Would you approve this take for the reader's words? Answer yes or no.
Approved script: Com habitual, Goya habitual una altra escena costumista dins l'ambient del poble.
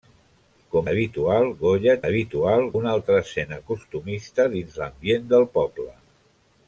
yes